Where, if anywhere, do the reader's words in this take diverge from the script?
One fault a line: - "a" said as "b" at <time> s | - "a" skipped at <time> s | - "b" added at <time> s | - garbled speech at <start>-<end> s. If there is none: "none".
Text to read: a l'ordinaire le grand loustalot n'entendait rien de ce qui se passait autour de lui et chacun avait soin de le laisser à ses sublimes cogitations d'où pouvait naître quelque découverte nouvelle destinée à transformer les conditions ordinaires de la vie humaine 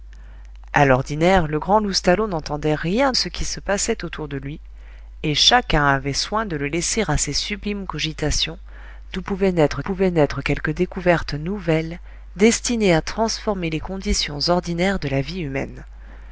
- "de" skipped at 3.1 s
- "pouvait naître" added at 9.8 s